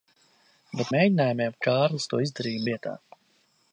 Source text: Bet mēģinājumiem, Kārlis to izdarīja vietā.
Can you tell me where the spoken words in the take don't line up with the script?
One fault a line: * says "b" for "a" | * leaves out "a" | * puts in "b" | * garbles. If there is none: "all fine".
all fine